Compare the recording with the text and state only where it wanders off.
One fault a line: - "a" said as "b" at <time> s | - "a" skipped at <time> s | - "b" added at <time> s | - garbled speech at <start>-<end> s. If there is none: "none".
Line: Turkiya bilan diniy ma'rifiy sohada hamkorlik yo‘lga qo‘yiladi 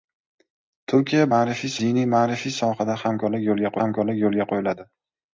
- "bilan" said as "ma'rifiy" at 1.4 s
- "hamkorlik yo‘lga" added at 3.8 s